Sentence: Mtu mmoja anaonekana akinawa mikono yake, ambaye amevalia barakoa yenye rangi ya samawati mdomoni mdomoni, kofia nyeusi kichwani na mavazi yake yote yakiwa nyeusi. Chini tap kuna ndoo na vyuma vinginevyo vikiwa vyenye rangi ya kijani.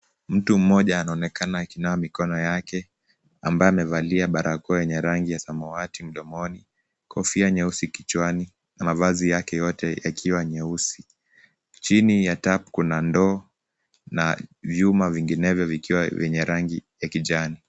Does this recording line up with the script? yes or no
no